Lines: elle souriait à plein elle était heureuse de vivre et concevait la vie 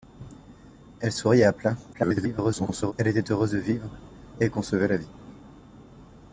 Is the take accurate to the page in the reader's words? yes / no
no